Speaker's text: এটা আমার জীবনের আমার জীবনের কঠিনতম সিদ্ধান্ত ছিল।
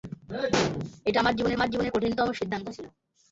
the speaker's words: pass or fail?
pass